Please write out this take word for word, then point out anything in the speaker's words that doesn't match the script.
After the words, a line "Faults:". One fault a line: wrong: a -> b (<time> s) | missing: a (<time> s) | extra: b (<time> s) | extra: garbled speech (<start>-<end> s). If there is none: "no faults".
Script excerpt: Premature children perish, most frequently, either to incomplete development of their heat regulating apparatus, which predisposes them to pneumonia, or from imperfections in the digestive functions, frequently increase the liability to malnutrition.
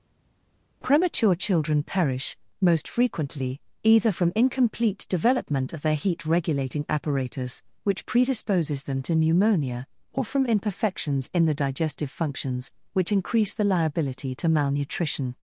Premature children perish, most frequently, either from incomplete development of their heat regulating apparatus, which predisposes them to pneumonia, or from imperfections in the digestive functions, which increase the liability to malnutrition.
Faults:
wrong: to -> from (4.1 s)
wrong: frequently -> which (12.9 s)